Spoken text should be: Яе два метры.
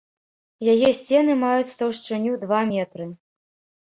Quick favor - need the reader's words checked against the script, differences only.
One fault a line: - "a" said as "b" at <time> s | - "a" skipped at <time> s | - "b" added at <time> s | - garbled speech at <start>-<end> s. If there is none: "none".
- "сцены маюць таўшчыню" added at 1.0 s